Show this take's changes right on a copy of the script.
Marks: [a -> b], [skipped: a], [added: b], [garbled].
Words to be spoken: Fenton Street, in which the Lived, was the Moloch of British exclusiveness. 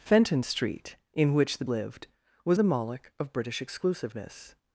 Fenton Street, in which the Lived, was the Moloch of British exclusiveness.